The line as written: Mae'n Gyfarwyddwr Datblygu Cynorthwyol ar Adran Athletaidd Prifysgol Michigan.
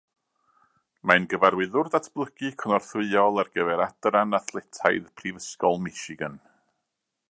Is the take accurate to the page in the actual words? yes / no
no